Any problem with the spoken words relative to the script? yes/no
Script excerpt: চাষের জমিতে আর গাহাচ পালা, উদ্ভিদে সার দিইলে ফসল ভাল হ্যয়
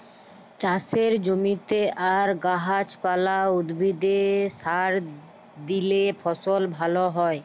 no